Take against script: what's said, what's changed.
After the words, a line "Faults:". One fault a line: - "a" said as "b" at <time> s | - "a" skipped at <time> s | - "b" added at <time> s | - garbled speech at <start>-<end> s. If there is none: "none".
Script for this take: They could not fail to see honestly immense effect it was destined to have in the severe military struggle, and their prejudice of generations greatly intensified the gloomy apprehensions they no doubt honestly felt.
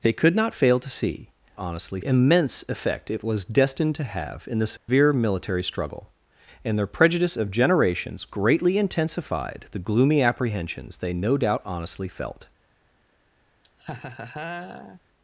They could not fail to see honestly immense effect it was destined to have in the severe military struggle, and their prejudice of generations greatly intensified the gloomy apprehensions they no doubt honestly felt.
Faults:
none